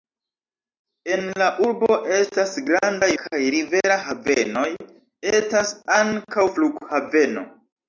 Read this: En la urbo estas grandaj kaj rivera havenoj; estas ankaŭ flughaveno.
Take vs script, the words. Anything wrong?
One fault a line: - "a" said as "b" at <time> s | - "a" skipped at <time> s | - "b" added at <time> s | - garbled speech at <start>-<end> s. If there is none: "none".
none